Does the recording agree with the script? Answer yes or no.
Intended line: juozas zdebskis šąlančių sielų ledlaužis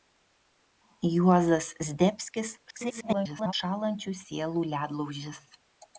no